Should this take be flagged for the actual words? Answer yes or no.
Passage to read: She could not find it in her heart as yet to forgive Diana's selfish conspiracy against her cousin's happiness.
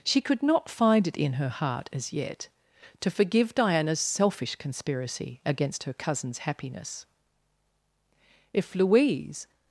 yes